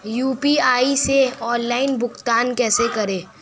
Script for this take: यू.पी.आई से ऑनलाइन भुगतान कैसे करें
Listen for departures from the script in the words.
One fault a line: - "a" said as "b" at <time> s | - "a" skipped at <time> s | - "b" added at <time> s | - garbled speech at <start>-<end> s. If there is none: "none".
none